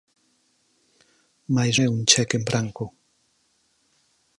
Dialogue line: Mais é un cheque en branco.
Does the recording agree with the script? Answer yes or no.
yes